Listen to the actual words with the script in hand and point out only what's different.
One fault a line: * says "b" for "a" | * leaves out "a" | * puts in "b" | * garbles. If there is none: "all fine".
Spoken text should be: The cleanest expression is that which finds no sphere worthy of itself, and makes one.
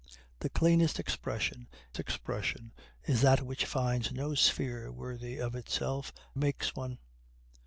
* puts in "expression"
* leaves out "and"